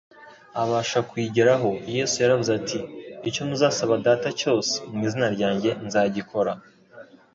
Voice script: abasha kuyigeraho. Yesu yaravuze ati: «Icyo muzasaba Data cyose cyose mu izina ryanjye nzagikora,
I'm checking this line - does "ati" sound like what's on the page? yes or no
yes